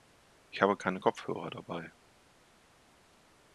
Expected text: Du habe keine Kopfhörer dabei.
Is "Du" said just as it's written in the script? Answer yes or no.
no